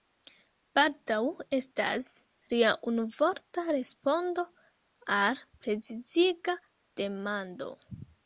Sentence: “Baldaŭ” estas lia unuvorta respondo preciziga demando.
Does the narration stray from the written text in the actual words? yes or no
yes